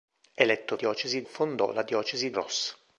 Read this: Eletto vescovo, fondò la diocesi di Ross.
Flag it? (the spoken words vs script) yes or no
yes